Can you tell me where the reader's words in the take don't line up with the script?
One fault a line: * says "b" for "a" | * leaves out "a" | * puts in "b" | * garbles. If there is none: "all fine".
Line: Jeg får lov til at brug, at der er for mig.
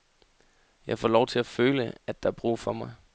* says "føle" for "brug"
* puts in "brug"